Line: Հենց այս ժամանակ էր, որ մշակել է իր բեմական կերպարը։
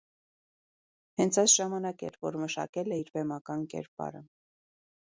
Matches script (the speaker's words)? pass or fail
pass